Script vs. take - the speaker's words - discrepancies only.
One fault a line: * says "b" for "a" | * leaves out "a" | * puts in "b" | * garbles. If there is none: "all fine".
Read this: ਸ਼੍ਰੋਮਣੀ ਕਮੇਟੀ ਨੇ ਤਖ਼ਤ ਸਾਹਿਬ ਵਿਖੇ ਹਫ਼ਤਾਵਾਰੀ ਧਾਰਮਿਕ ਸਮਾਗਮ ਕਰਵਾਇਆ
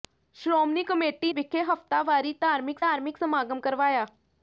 * leaves out "ਨੇ ਤਖ਼ਤ ਸਾਹਿਬ"
* puts in "ਧਾਰਮਿਕ"